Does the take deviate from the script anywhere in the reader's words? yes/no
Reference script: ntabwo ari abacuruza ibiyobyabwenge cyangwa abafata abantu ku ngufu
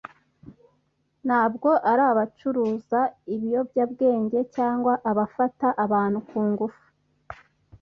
no